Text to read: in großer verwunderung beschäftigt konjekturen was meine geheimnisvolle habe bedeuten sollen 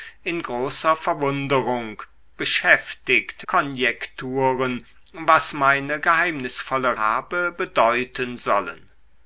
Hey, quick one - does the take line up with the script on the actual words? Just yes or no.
yes